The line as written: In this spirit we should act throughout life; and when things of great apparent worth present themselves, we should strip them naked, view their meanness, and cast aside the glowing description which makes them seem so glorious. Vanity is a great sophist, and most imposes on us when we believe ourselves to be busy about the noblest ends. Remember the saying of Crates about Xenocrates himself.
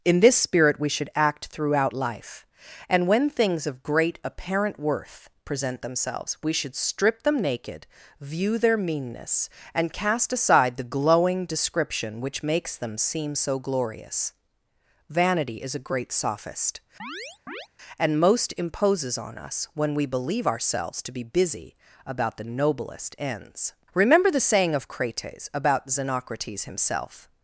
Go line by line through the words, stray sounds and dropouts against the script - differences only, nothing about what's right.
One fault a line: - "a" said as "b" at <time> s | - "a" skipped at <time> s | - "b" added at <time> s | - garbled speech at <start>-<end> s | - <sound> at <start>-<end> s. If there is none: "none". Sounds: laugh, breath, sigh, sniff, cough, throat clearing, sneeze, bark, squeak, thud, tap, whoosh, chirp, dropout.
- chirp at 17.0-17.7 s